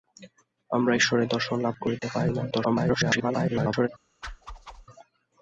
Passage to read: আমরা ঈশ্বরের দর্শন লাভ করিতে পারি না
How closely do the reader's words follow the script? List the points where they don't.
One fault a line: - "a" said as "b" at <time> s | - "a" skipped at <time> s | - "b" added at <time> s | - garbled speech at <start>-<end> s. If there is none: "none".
- garbled speech at 2.5-3.9 s